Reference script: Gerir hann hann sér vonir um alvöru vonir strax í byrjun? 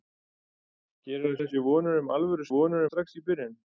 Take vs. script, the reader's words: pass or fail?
pass